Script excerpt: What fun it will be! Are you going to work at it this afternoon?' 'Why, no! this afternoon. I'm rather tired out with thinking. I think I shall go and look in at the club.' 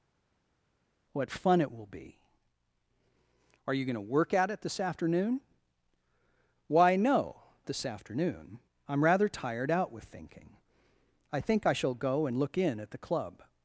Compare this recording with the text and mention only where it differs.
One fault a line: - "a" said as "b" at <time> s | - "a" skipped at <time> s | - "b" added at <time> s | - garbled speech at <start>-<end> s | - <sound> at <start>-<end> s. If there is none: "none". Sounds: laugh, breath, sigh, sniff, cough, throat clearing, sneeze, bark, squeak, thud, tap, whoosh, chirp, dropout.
none